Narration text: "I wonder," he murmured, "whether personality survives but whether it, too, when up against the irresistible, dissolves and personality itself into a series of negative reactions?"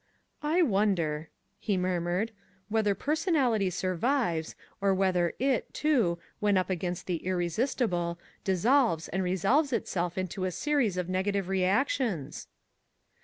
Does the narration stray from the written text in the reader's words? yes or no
yes